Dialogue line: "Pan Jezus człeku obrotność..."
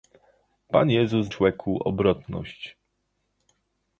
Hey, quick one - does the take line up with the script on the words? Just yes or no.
yes